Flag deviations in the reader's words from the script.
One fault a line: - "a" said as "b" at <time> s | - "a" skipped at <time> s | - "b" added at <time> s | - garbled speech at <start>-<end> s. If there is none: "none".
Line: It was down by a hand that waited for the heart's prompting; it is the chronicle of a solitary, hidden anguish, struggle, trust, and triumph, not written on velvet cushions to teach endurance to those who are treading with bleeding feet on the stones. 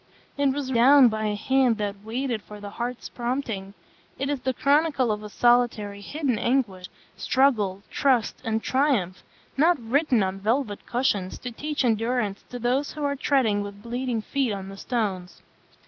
none